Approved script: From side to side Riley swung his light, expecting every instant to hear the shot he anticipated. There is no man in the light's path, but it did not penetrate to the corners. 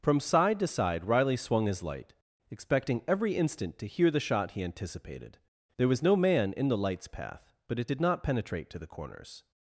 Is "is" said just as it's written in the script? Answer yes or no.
no